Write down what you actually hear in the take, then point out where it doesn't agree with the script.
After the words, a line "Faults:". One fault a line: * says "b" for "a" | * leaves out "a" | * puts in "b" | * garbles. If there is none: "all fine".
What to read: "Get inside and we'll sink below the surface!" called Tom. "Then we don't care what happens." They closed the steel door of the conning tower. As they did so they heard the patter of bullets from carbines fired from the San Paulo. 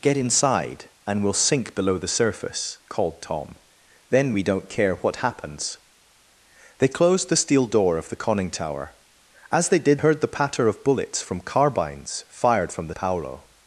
"Get inside and we'll sink below the surface!" called Tom. "Then we don't care what happens." They closed the steel door of the conning tower. As they did heard the patter of bullets from carbines fired from the Paulo.
Faults:
* leaves out "so they"
* leaves out "San"